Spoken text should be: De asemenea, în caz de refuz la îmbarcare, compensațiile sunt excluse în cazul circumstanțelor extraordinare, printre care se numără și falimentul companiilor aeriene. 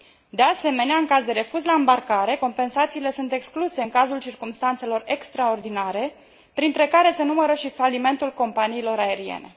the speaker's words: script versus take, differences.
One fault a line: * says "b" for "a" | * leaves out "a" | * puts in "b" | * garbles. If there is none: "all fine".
all fine